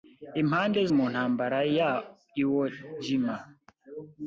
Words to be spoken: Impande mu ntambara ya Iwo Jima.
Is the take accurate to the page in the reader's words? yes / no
yes